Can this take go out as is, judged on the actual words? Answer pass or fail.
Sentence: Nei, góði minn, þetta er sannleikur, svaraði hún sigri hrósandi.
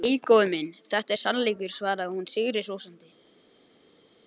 pass